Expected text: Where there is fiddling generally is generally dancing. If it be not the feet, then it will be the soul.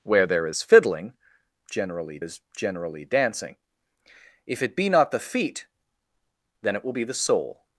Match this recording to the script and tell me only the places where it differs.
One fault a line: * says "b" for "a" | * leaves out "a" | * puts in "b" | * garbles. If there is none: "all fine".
all fine